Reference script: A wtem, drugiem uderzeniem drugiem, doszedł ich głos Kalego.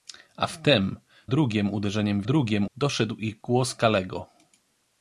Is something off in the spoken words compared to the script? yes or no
no